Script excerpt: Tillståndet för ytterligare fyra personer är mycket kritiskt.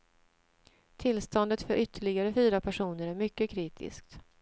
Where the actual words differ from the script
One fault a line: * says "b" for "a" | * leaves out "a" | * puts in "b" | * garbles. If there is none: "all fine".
all fine